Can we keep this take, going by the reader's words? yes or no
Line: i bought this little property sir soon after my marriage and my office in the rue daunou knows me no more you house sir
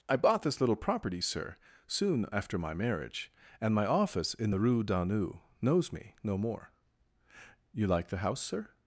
no